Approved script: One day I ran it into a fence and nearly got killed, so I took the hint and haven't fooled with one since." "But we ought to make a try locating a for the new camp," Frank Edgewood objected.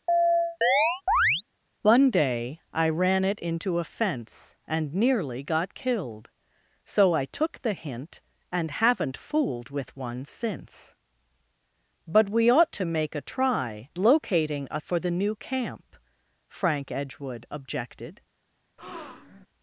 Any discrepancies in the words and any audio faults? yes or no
yes